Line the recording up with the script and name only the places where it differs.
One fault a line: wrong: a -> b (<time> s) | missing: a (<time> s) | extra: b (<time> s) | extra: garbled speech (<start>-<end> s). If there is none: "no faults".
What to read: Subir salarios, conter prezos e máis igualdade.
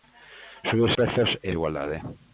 missing: salarios conter (0.9 s)
missing: máis (1.5 s)